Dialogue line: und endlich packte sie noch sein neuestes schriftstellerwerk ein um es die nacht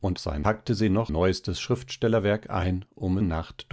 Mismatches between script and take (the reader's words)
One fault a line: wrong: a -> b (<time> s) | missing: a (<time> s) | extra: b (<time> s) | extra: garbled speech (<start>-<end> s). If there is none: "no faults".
wrong: endlich -> sein (0.2 s)
missing: sein (1.1 s)
missing: es die (3.2 s)